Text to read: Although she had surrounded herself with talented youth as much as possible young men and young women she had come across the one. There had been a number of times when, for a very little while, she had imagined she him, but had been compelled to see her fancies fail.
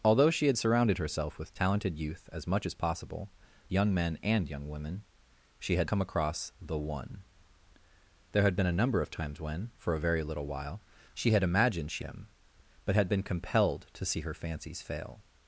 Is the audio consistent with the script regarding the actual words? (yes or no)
yes